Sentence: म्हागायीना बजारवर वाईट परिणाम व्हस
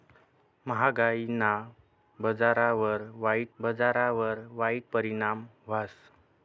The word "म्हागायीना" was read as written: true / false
true